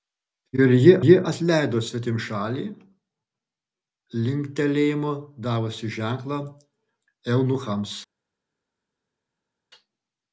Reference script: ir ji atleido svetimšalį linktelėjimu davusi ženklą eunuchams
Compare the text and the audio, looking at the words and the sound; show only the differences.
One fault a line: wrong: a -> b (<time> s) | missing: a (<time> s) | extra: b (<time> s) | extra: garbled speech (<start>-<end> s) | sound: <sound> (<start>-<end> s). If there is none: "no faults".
extra: ji (1.1 s)